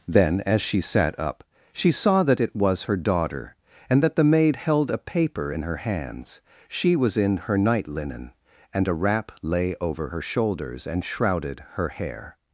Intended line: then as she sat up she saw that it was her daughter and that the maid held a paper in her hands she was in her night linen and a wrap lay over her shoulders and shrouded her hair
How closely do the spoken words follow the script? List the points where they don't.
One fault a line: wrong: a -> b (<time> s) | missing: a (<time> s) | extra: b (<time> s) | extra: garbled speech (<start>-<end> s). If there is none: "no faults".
no faults